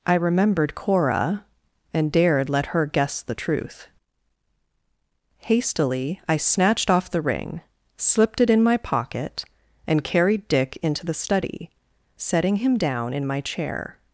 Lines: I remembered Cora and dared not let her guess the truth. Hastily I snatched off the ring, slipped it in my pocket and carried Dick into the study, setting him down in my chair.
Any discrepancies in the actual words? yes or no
yes